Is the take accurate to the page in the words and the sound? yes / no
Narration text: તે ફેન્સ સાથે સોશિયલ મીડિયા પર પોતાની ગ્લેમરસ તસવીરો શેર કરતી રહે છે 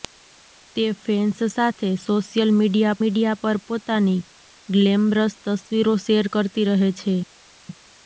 no